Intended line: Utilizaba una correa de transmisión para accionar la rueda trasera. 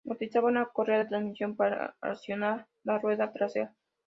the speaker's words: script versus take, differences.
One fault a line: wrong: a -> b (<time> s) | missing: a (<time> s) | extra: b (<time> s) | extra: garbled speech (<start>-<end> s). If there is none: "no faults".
no faults